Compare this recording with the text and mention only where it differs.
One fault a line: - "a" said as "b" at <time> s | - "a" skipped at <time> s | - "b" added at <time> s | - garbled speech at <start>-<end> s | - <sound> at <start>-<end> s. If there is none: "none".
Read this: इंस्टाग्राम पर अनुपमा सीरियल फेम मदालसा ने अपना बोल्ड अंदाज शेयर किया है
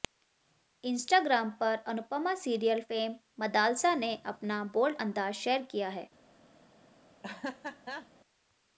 - laugh at 7.2-8.1 s